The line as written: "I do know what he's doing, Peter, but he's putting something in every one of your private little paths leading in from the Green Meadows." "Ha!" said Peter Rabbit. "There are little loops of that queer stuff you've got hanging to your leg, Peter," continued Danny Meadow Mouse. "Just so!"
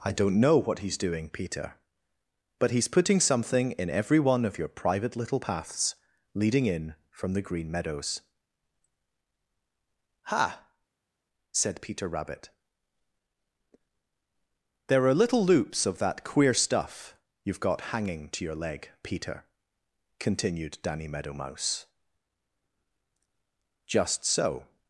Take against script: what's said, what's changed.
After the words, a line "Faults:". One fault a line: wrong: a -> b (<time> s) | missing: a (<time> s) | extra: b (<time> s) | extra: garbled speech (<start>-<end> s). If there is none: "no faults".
"I don't know what he's doing, Peter, but he's putting something in every one of your private little paths leading in from the Green Meadows." "Ha!" said Peter Rabbit. "There are little loops of that queer stuff you've got hanging to your leg, Peter," continued Danny Meadow Mouse. "Just so!"
Faults:
wrong: do -> don't (0.1 s)